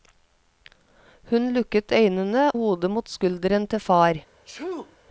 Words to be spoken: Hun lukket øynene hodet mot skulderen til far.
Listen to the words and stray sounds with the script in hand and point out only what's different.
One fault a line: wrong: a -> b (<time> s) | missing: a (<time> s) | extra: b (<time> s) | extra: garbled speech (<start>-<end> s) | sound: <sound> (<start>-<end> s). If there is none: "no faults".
sound: sneeze (4.4-5.0 s)